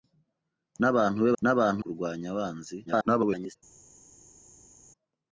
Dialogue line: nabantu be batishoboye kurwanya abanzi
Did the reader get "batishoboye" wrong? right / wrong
wrong